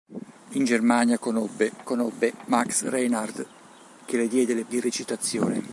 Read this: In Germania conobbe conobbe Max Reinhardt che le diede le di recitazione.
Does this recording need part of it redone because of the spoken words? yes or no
no